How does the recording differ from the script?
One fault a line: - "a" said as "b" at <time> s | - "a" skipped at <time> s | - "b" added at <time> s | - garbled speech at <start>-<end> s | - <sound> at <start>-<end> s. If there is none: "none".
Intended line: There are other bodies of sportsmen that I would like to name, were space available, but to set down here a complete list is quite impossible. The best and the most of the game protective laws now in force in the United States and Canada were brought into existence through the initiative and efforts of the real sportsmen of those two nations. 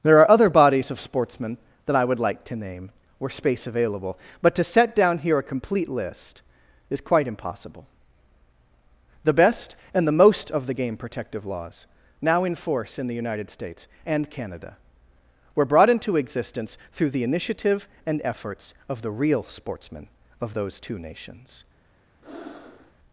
- breath at 22.2-22.9 s